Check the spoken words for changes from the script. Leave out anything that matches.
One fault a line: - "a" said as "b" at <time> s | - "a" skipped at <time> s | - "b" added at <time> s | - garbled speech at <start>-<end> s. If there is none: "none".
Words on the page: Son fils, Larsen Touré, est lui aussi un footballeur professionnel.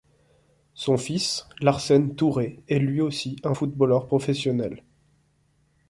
none